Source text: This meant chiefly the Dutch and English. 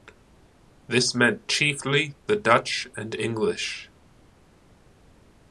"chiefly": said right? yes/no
yes